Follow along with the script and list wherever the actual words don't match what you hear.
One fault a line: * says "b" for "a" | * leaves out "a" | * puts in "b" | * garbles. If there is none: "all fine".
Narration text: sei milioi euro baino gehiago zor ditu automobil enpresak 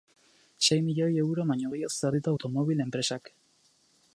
all fine